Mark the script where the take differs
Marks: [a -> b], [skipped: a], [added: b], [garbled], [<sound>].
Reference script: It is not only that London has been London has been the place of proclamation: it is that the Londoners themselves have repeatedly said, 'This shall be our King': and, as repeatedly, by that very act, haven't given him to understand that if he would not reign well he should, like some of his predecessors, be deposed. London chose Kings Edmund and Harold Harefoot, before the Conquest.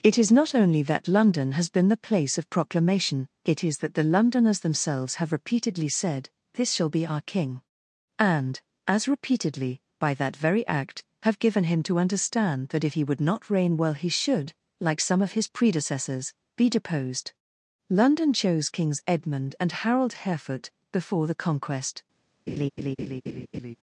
It is not only that London has been [skipped: London has been] the place of proclamation: it is that the Londoners themselves have repeatedly said, 'This shall be our King': and, as repeatedly, by that very act, [haven't -> have] given him to understand that if he would not reign well he should, like some of his predecessors, be deposed. London chose Kings Edmund and Harold Harefoot, before the Conquest. [laugh]